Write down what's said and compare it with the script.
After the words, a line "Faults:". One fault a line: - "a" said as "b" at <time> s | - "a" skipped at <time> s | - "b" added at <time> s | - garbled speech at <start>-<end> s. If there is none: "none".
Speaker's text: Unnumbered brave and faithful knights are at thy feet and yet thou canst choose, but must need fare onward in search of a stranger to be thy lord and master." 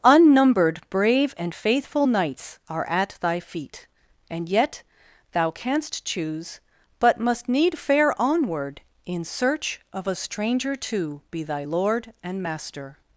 Unnumbered brave and faithful knights are at thy feet and yet thou canst choose, but must need fare onward in search of a stranger to be thy lord and master."
Faults:
none